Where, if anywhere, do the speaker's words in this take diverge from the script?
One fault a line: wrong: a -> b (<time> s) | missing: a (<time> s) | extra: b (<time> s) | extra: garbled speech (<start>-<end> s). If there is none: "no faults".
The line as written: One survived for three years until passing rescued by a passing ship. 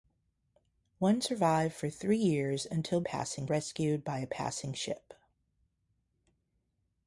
no faults